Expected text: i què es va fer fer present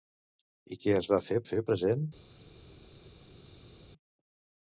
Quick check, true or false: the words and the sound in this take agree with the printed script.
true